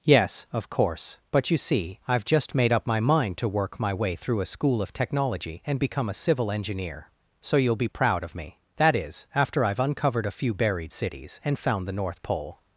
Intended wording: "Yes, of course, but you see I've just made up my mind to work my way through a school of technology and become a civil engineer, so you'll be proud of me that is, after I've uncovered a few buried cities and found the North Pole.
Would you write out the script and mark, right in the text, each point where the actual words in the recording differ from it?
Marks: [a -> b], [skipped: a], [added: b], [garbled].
"Yes, of course, but you see I've just made up my mind to work my way through a school of technology and become a civil engineer, so you'll be proud of me that is, after I've uncovered a few buried cities and found the North Pole.